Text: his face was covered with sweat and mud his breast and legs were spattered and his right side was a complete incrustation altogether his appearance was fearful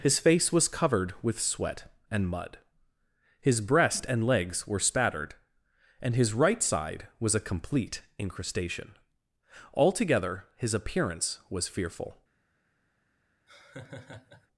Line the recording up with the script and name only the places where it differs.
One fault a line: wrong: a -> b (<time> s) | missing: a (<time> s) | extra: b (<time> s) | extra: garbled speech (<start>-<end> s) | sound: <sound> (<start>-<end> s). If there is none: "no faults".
sound: laugh (13.5-14.5 s)